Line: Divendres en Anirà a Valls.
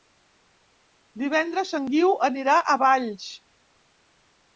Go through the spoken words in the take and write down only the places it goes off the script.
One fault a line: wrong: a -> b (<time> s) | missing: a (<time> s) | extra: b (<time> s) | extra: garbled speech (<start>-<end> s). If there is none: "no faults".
extra: Guiu (1.9 s)